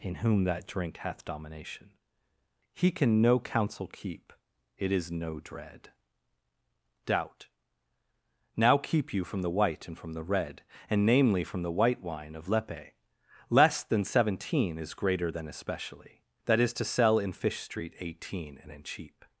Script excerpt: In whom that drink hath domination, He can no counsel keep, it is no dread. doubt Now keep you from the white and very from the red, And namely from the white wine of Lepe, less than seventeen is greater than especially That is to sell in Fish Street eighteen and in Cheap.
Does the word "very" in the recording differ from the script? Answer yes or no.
yes